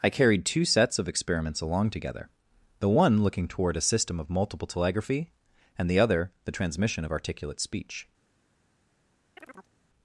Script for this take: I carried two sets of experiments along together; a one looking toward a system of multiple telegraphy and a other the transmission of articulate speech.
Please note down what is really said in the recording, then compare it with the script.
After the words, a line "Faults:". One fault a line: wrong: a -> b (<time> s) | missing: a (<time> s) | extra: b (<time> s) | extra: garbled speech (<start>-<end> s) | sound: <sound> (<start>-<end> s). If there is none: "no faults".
I carried two sets of experiments along together; the one looking toward a system of multiple telegraphy and the other the transmission of articulate speech.
Faults:
wrong: a -> the (2.8 s)
wrong: a -> the (5.9 s)
sound: chirp (9.4-9.7 s)